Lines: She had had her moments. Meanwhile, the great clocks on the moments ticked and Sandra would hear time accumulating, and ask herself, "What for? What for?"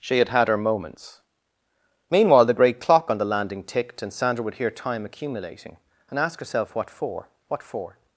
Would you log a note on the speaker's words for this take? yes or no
yes